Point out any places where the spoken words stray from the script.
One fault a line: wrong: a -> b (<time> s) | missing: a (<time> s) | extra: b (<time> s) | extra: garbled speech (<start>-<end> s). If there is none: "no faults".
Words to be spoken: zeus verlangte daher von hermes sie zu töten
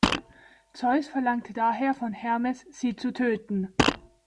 no faults